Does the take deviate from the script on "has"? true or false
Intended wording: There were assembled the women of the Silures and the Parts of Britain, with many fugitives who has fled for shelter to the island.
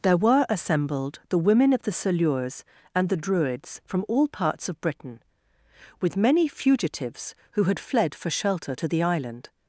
true